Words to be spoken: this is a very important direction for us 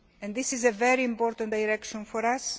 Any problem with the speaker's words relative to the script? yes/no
no